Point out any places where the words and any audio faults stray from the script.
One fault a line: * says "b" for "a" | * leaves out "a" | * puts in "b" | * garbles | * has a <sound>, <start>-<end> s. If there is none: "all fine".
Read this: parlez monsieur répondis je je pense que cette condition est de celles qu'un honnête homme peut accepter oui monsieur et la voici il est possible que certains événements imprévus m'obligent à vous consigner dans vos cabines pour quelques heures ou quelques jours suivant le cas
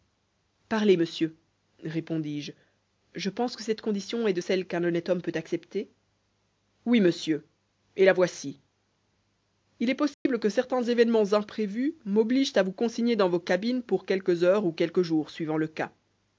* has a dropout, 10.1-10.3 s